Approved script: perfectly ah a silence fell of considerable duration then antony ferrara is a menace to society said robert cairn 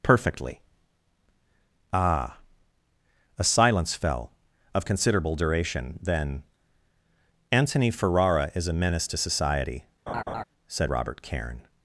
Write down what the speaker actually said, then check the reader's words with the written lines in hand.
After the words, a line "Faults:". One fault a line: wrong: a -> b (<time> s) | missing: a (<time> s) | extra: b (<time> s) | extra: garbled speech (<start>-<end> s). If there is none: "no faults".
perfectly ah a silence fell of considerable duration then antony ferrara is a menace to society said robert cairn
Faults:
no faults